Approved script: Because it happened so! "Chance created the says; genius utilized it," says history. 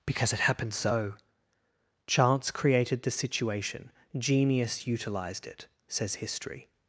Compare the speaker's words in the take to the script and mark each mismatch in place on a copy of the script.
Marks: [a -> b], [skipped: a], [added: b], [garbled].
Because it happened so! "Chance created the [says; -> situation] genius utilized it," says history.